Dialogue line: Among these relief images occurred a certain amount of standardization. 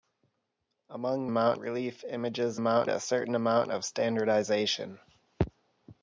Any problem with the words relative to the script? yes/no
yes